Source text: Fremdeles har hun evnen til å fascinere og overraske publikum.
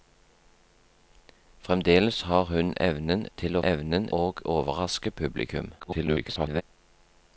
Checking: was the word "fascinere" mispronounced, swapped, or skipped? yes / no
yes